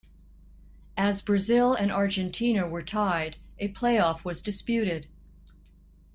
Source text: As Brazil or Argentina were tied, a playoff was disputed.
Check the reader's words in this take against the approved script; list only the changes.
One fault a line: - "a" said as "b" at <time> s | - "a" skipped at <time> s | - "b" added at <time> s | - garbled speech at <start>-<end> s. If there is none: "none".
- "or" said as "and" at 1.7 s